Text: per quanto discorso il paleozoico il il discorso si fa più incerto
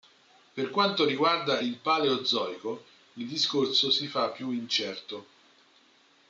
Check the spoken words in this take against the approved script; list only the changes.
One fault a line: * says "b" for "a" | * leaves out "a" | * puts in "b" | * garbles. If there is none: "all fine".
* says "riguarda" for "discorso"
* leaves out "il"